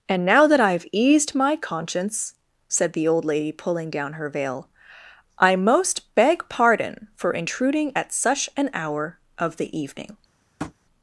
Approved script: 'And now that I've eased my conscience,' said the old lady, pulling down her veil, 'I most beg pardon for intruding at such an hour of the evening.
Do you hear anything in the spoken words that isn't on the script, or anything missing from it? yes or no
no